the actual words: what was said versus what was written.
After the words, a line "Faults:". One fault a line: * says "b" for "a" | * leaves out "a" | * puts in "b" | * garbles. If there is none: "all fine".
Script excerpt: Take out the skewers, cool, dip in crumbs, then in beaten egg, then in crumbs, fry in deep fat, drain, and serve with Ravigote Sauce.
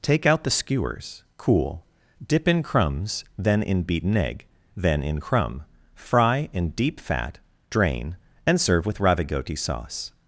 Take out the skewers, cool, dip in crumbs, then in beaten egg, then in crumb, fry in deep fat, drain, and serve with Ravigote Sauce.
Faults:
* says "crumb" for "crumbs"